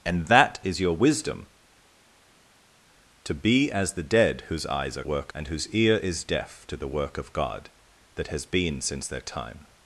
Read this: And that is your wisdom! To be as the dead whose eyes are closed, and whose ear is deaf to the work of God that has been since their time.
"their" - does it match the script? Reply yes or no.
yes